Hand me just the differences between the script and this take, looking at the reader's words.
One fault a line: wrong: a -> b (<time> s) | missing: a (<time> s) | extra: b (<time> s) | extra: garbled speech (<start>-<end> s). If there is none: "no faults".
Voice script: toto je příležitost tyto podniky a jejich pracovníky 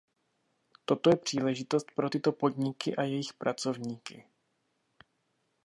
extra: pro (2.0 s)